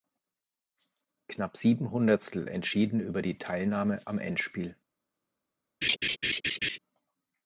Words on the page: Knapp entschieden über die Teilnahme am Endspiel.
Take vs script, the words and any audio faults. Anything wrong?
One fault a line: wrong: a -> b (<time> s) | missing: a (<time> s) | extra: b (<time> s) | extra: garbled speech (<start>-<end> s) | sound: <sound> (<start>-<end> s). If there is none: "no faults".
extra: sieben Hundertstel (1.6 s)
sound: laugh (5.8-6.8 s)